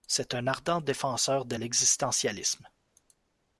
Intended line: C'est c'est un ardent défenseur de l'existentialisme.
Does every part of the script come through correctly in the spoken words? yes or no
no